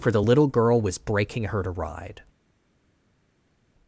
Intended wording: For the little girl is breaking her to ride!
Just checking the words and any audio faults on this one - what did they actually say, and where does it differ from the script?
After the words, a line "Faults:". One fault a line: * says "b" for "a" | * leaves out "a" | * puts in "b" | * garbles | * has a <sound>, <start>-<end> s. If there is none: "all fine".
For the little girl was breaking her to ride!
Faults:
* says "was" for "is"